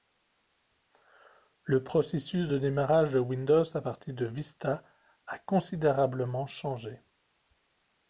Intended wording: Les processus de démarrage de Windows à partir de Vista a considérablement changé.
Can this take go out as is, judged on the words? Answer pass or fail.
fail